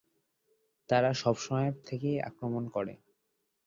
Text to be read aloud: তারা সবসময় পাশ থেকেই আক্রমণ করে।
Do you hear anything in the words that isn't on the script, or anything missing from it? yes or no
yes